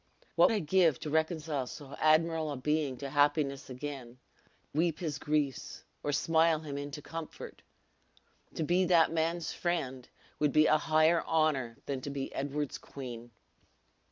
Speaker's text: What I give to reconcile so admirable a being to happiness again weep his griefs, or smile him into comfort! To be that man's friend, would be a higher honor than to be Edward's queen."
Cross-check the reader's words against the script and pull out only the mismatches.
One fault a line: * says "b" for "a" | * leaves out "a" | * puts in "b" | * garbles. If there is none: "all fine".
all fine